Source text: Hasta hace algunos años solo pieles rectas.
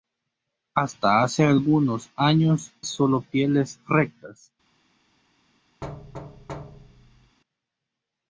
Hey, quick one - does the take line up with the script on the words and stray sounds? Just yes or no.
no